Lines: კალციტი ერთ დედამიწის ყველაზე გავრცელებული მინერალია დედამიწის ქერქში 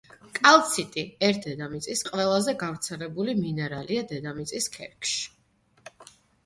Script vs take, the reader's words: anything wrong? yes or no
no